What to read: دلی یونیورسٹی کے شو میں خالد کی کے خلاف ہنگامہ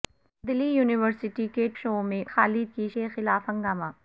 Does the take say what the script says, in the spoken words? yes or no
yes